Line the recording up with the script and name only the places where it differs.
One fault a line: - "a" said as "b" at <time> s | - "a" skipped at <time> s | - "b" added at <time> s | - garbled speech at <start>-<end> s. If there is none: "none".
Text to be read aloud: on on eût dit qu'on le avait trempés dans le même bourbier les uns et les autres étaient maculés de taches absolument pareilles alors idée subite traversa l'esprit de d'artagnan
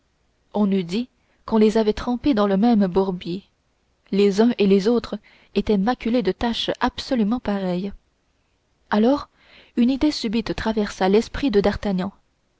- "on" skipped at 0.7 s
- "le" said as "les" at 1.6 s
- "une" added at 9.8 s